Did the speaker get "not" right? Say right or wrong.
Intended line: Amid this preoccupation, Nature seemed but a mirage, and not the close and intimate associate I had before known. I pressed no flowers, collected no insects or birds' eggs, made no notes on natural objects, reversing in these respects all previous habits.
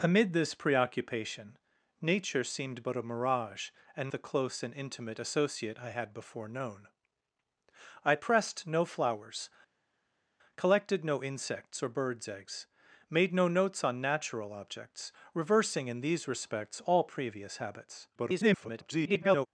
wrong